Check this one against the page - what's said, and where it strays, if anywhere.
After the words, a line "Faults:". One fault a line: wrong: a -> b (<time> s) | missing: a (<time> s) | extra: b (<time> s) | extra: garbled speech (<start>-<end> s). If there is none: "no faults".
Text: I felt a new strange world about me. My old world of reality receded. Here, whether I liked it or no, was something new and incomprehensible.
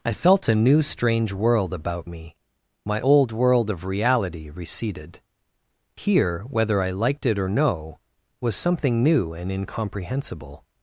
I felt a new strange world about me. My old world of reality receded. Here, whether I liked it or no, was something new and incomprehensible.
Faults:
no faults